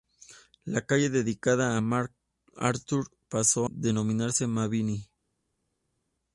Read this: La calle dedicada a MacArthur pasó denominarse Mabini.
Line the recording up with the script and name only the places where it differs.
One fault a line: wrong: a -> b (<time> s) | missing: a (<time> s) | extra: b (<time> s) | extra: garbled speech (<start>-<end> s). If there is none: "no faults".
no faults